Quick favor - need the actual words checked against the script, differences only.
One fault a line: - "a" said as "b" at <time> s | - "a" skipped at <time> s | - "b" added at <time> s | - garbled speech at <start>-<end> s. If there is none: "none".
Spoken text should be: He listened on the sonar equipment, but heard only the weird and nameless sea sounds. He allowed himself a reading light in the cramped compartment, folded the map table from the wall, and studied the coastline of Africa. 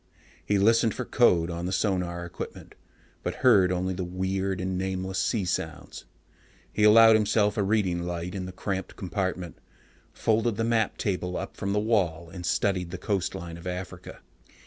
- "for code" added at 0.9 s
- "up" added at 11.4 s